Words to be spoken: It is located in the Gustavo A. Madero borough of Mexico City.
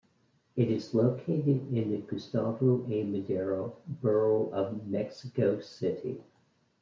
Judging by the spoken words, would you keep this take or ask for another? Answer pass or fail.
pass